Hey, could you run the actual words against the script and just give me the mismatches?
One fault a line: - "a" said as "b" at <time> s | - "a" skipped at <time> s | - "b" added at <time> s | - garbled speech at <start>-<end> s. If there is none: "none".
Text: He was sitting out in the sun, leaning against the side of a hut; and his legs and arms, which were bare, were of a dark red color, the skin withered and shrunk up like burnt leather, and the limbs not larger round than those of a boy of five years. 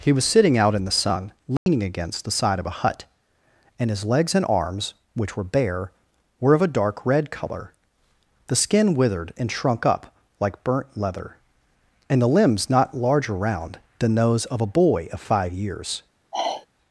none